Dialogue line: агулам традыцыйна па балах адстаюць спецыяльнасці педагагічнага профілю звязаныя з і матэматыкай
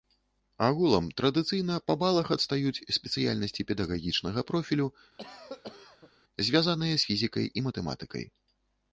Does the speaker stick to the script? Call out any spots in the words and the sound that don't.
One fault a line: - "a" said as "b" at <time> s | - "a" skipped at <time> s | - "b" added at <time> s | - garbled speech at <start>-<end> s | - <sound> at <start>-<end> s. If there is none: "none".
- cough at 5.2-6.1 s
- "фізікай" added at 7.1 s